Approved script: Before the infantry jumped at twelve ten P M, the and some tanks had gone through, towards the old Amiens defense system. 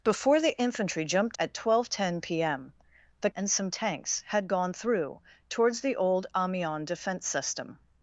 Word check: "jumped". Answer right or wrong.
right